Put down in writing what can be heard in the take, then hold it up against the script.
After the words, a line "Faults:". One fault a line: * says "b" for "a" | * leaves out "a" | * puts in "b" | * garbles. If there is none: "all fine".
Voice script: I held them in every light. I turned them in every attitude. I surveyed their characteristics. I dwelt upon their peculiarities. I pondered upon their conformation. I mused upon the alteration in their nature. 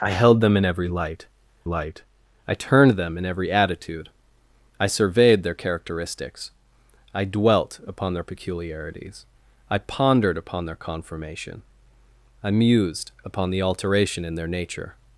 I held them in every light light. I turned them in every attitude. I surveyed their characteristics. I dwelt upon their peculiarities. I pondered upon their conformation. I mused upon the alteration in their nature.
Faults:
* puts in "light"